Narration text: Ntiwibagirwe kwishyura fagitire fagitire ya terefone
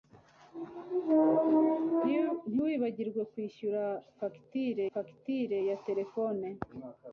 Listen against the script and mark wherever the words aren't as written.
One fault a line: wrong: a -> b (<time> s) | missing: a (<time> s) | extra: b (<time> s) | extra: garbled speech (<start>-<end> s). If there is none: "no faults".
no faults